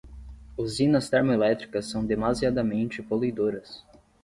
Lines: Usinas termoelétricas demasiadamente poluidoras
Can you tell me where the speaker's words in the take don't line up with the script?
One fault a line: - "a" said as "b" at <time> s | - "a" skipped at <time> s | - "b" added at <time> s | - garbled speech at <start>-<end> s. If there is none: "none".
- "são" added at 1.9 s